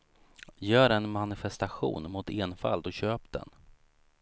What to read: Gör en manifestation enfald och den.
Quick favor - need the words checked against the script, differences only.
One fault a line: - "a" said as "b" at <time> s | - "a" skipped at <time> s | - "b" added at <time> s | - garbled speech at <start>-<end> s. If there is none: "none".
- "mot" added at 2.1 s
- "köp" added at 2.9 s